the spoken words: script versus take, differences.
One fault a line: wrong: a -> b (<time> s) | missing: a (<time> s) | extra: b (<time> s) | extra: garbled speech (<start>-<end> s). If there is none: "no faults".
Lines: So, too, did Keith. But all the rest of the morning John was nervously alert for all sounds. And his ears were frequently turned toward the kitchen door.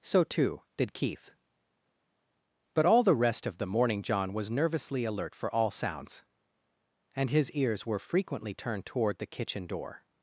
no faults